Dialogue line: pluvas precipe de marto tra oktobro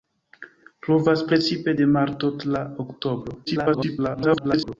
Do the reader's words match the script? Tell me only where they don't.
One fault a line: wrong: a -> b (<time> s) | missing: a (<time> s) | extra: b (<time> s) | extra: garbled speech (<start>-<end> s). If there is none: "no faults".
extra: garbled speech (3.5-4.8 s)